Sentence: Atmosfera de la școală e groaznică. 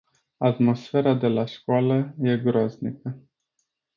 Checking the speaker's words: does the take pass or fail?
pass